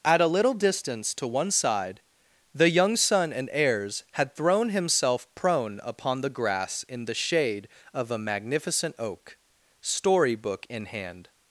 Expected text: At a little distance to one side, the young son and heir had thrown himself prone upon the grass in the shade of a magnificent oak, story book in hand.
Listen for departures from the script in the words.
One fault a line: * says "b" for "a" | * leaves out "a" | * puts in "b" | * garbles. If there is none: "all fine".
* says "heirs" for "heir"